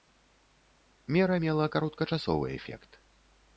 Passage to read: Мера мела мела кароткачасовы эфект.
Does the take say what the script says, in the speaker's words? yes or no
no